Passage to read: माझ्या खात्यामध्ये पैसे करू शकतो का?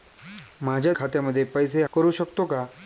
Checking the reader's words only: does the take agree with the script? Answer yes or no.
yes